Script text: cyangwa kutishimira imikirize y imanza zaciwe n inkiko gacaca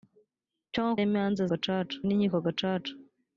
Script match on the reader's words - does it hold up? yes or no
no